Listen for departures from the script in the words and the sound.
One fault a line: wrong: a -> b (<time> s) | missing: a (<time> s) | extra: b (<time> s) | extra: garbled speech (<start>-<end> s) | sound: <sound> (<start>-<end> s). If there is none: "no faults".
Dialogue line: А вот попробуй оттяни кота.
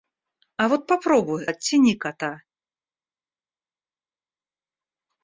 no faults